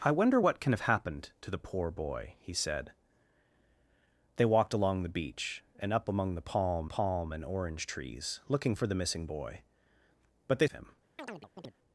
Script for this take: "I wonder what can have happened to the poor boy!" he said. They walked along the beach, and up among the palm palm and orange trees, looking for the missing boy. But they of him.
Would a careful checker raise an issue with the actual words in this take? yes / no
no